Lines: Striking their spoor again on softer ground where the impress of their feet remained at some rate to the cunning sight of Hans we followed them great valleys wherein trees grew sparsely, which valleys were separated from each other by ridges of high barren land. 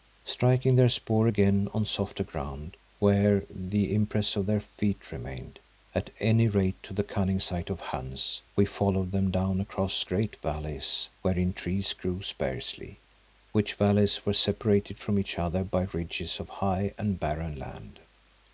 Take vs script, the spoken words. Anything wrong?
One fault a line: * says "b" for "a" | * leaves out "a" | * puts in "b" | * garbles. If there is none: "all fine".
* says "any" for "some"
* puts in "down across"
* puts in "and"